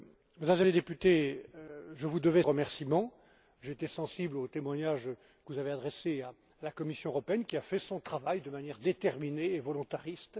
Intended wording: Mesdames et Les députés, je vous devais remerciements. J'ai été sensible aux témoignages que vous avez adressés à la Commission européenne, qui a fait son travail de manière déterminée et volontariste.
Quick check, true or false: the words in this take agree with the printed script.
true